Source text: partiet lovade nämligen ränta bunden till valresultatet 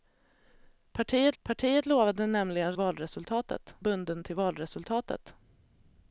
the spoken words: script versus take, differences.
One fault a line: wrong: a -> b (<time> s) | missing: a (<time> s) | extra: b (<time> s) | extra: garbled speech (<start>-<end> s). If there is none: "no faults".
extra: partiet (1.4 s)
wrong: ränta -> valresultatet (2.7 s)